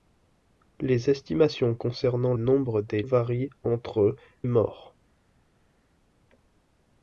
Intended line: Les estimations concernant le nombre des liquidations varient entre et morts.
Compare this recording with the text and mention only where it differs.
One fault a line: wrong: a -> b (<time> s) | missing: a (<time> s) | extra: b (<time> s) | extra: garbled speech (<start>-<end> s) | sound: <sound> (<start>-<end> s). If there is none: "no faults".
missing: le (2.3 s)
missing: liquidations (3.0 s)
missing: et (4.2 s)